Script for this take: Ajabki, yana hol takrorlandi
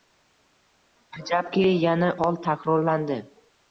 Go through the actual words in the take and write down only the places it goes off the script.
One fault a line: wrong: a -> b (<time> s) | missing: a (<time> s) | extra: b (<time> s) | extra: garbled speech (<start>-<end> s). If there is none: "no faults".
no faults